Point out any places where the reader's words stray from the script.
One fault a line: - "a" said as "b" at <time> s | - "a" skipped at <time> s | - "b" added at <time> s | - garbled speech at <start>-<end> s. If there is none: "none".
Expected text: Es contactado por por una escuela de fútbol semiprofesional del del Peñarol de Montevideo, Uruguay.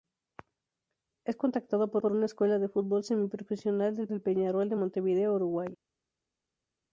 none